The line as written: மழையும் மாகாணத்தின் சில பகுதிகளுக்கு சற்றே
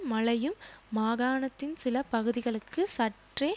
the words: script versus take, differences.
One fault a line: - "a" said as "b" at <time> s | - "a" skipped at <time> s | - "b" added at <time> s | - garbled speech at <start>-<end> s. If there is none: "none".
none